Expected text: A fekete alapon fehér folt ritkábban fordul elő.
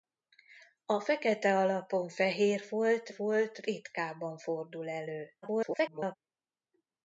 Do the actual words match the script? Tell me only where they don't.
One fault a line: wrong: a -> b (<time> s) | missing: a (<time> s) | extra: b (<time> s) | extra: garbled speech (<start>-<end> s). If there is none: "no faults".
extra: folt (3.1 s)
extra: garbled speech (5.4-6.2 s)